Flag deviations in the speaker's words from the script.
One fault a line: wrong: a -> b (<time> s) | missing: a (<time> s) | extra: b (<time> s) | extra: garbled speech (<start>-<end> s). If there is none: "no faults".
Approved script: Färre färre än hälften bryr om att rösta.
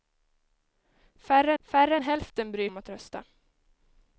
no faults